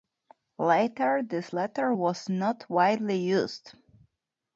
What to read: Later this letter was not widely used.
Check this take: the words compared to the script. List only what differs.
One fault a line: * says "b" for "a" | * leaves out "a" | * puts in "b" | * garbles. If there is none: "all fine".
all fine